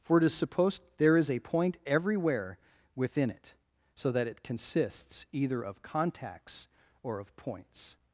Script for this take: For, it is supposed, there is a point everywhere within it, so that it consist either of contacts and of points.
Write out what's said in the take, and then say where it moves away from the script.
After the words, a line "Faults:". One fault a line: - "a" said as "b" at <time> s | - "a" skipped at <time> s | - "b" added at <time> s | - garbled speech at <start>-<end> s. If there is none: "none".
For, it is supposed, there is a point everywhere within it, so that it consists either of contacts or of points.
Faults:
- "consist" said as "consists" at 4.4 s
- "and" said as "or" at 7.0 s